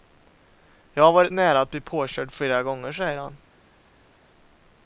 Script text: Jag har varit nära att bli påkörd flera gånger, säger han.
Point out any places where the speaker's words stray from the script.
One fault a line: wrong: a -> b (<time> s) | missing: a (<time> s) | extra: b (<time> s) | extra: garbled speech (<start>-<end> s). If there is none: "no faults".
no faults